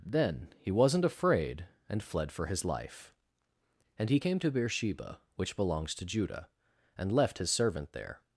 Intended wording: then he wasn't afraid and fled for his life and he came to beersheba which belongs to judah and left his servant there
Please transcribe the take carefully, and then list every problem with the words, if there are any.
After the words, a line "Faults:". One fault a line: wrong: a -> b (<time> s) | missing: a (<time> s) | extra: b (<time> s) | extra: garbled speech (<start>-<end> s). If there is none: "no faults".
then he wasn't afraid and fled for his life and he came to beersheba which belongs to judah and left his servant there
Faults:
no faults